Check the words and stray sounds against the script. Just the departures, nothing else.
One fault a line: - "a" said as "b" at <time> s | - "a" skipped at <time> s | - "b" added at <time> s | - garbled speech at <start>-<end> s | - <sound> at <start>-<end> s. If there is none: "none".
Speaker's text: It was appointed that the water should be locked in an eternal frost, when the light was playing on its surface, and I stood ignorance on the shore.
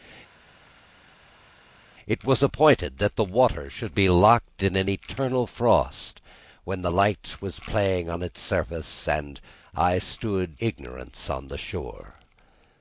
none